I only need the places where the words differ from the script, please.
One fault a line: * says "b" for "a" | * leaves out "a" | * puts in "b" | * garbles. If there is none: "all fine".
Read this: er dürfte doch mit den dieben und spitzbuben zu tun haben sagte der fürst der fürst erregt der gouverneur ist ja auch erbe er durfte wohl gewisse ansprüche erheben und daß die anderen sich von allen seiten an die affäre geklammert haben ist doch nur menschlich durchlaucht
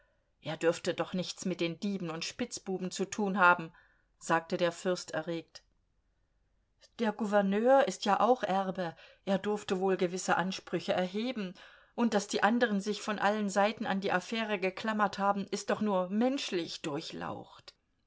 * puts in "nichts"
* leaves out "der fürst"